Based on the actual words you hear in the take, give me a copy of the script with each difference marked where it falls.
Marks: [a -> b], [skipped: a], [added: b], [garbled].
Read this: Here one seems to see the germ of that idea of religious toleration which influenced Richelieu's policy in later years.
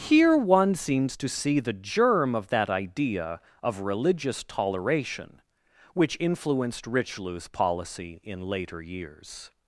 Here one seems to see the germ of that idea of religious toleration which influenced Richelieu's policy in later years.